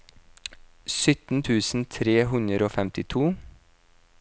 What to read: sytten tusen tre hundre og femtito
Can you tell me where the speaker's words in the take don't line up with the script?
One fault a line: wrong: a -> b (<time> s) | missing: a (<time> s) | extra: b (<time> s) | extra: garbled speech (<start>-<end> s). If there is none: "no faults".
no faults